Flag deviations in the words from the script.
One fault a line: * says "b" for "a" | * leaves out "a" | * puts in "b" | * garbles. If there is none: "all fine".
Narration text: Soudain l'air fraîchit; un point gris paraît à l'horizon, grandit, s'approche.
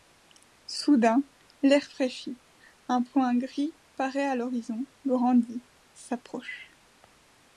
all fine